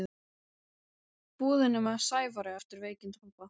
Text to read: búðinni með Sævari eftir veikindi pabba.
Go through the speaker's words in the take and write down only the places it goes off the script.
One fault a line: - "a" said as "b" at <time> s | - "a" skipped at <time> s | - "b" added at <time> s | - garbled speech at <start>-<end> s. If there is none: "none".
none